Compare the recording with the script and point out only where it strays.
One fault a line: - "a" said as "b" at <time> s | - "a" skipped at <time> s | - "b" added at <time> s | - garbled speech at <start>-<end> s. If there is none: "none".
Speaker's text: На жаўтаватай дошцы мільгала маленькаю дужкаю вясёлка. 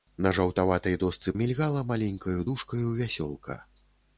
none